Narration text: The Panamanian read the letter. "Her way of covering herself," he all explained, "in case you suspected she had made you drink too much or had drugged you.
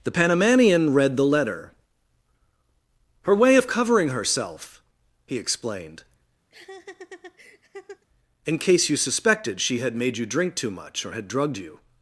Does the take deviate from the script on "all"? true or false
true